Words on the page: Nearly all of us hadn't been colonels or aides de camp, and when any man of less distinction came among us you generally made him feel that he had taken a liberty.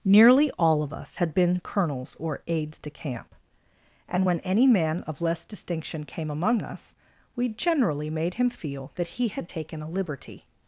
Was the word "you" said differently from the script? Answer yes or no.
yes